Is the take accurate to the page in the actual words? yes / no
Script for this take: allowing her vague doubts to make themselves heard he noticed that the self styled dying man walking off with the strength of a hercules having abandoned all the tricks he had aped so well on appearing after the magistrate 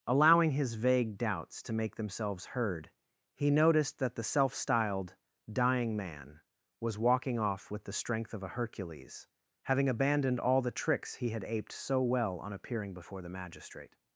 no